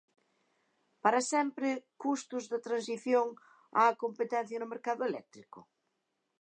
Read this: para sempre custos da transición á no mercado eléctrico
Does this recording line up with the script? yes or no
no